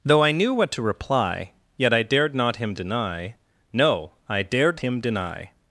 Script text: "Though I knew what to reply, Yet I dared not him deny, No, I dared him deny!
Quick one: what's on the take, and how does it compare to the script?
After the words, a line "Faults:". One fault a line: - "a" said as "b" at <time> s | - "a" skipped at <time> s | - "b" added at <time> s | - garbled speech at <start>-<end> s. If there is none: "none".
"Though I knew what to reply, Yet I dared not him deny, No, I dared him deny!
Faults:
none